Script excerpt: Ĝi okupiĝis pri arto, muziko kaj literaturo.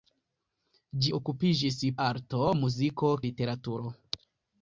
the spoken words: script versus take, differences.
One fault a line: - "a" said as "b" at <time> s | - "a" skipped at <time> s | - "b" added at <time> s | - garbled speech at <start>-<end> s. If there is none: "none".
- "pri" skipped at 1.8 s
- "kaj" skipped at 3.1 s